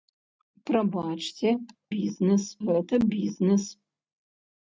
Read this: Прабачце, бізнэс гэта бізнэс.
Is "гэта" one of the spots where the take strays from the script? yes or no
no